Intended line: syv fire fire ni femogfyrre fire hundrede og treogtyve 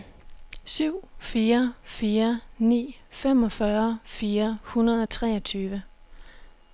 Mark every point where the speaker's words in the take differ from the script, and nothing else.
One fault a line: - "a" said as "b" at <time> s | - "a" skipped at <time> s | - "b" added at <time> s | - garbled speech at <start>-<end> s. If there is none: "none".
none